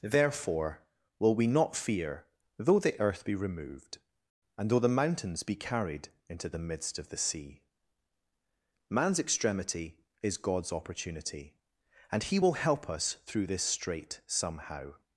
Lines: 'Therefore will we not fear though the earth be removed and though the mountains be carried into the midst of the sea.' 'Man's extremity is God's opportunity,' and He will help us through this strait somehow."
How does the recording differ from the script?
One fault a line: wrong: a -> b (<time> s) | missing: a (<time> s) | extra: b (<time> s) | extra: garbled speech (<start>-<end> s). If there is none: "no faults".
no faults